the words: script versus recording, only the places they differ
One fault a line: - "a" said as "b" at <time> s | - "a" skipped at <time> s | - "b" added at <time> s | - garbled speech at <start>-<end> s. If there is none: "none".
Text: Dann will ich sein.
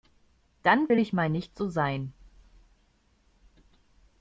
- "mal nicht so" added at 1.1 s